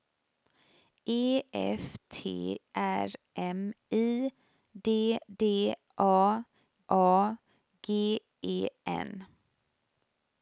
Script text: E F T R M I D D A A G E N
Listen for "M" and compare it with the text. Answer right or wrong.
right